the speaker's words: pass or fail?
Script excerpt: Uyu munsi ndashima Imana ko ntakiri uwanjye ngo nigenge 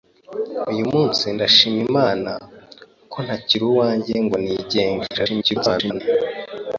fail